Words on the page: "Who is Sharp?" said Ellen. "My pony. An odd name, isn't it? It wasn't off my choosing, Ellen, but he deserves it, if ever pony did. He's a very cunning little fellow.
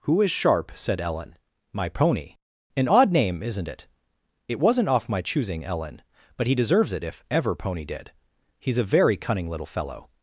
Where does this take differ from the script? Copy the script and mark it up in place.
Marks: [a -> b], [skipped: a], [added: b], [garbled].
"Who is Sharp?" said Ellen. "My pony. An odd name, isn't it? It wasn't off my choosing, Ellen, but he deserves it, if ever pony did. He's a very cunning little fellow.